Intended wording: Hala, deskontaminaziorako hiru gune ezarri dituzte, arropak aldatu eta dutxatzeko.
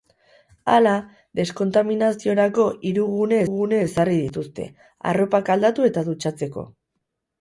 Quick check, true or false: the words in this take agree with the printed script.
false